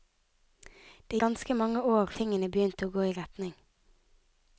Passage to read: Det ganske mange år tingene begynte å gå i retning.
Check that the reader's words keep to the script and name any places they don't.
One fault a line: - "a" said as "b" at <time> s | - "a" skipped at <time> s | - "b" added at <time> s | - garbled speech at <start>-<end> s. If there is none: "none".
none